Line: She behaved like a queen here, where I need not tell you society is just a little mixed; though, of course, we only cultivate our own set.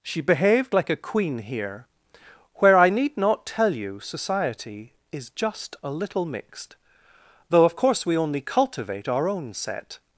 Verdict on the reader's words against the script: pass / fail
pass